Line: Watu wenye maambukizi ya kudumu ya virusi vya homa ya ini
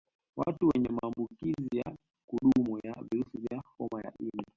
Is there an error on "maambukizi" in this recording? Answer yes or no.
no